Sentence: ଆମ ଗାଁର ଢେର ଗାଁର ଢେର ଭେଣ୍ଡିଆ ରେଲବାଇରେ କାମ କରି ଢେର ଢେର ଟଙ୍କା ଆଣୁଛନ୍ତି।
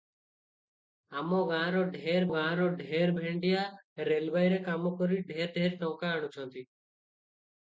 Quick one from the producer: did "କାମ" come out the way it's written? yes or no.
yes